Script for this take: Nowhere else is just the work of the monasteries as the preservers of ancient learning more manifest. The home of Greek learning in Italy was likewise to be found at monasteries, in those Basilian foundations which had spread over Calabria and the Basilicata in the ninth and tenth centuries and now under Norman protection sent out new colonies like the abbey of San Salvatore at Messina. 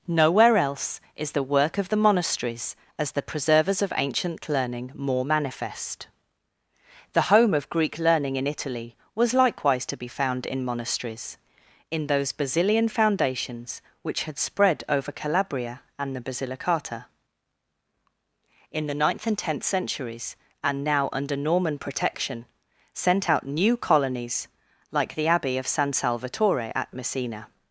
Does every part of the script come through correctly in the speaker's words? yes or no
no